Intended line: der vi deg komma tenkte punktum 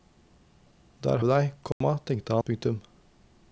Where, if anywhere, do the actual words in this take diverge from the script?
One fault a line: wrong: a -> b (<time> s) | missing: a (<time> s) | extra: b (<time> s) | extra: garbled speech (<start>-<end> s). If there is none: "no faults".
no faults